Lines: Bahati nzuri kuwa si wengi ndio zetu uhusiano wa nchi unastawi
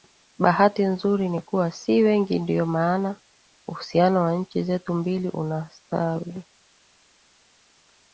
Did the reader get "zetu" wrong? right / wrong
wrong